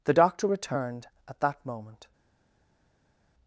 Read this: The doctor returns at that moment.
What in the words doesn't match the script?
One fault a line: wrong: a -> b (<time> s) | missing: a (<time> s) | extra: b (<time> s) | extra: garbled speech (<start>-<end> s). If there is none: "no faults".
wrong: returns -> returned (0.4 s)